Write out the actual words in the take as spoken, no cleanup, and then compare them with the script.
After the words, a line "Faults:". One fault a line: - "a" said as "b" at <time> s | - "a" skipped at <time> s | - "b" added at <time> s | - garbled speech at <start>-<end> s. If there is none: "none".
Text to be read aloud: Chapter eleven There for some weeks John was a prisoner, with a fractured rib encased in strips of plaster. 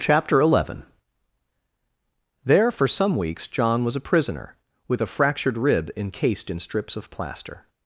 Chapter eleven There for some weeks John was a prisoner, with a fractured rib encased in strips of plaster.
Faults:
none